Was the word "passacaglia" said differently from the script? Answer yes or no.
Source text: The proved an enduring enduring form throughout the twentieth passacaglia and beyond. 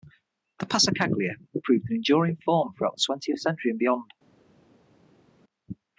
yes